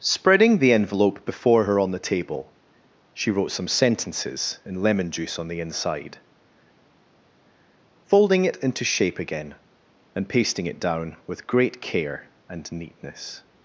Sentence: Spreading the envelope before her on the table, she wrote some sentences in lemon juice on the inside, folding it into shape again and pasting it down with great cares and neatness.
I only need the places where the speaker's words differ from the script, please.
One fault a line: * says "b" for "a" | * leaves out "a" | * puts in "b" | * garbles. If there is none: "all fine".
* says "care" for "cares"